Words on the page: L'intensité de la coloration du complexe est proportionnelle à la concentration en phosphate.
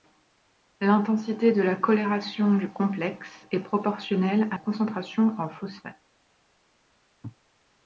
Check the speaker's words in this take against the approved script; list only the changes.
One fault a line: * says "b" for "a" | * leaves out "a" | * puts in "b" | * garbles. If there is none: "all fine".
* leaves out "la"